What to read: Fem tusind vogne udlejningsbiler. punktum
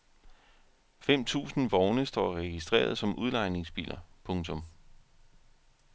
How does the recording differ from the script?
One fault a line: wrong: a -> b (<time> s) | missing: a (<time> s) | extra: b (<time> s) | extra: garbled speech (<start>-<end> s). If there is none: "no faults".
extra: står registreret som (2.0 s)